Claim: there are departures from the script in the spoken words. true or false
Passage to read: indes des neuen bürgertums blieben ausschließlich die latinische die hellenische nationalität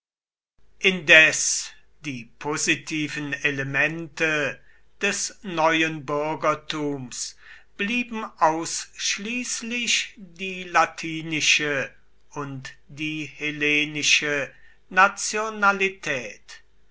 true